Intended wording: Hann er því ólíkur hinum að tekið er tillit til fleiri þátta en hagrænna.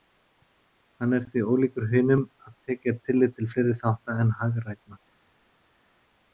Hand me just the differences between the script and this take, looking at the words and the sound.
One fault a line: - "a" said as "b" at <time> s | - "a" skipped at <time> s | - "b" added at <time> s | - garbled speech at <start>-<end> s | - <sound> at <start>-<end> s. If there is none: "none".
none